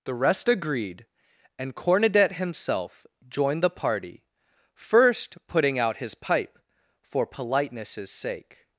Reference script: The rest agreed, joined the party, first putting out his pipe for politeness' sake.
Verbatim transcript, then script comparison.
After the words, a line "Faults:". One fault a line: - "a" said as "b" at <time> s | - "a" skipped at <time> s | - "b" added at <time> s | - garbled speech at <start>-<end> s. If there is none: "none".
The rest agreed, and Cornudet himself joined the party, first putting out his pipe for politeness' sake.
Faults:
- "and Cornudet himself" added at 1.6 s